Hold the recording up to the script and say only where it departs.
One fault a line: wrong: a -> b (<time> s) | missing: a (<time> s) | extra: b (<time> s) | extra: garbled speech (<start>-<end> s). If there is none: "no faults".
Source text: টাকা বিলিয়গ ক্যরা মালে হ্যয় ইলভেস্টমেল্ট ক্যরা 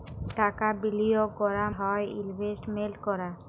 missing: মালে (1.6 s)